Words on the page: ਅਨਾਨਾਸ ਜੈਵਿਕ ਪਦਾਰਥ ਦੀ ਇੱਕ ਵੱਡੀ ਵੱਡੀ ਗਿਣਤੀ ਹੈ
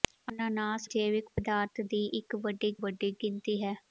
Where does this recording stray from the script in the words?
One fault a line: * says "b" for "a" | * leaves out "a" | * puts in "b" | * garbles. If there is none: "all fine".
all fine